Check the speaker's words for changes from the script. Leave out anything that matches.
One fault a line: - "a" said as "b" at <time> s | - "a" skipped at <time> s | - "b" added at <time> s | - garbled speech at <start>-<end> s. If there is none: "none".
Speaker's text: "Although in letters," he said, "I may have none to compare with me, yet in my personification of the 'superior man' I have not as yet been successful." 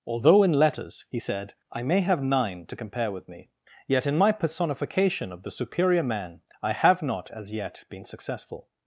- "none" said as "nine" at 2.2 s